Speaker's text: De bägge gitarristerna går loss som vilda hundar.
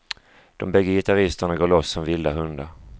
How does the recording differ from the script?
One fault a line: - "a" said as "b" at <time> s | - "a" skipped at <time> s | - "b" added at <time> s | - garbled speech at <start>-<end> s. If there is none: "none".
none